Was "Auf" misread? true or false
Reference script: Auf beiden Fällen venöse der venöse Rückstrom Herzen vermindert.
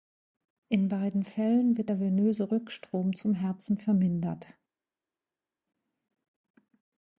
true